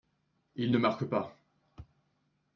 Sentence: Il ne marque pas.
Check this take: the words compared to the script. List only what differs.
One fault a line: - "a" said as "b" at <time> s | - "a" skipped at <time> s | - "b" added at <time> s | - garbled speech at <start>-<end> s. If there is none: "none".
none